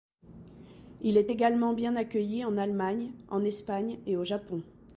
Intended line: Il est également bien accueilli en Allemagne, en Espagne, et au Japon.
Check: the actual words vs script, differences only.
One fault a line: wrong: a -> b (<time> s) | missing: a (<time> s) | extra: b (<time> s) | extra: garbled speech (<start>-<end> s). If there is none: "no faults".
no faults